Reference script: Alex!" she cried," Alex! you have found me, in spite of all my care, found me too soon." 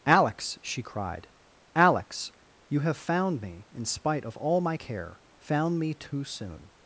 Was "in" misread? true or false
false